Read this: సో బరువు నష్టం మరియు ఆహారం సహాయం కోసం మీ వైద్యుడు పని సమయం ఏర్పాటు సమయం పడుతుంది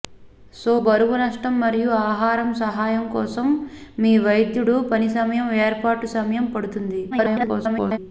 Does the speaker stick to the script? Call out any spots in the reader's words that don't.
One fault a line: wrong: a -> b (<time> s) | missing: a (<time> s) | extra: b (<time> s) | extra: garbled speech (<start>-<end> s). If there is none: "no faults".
extra: garbled speech (7.1-8.0 s)